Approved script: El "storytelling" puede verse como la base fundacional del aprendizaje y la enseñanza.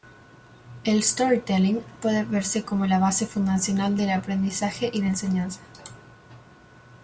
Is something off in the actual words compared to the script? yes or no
no